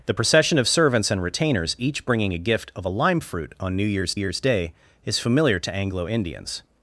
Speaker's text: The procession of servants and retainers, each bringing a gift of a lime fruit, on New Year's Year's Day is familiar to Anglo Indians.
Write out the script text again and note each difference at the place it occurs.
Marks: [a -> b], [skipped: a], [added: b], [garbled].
The procession of servants and retainers, each bringing a gift of a lime fruit, on New Year's Year's Day is familiar to Anglo Indians.